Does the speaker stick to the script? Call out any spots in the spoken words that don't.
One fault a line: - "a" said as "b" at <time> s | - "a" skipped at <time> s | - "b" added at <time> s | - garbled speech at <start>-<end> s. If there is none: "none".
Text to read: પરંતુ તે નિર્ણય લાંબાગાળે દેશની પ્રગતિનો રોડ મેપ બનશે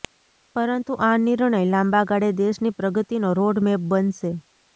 - "તે" said as "આ" at 1.0 s